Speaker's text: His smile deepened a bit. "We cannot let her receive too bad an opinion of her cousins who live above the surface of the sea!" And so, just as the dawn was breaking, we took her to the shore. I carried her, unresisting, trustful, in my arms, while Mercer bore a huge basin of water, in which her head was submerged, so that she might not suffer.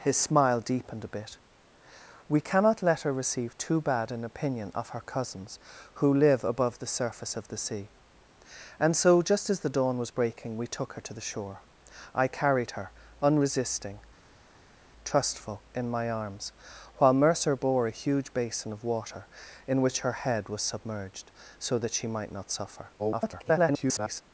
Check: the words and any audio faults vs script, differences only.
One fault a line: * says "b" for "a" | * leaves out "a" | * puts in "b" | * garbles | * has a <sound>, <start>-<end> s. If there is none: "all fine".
* garbles